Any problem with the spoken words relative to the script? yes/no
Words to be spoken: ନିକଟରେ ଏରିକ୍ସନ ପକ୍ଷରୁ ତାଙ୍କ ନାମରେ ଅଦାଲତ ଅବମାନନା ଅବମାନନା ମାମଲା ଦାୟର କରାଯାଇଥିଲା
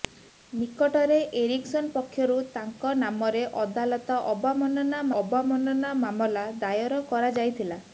no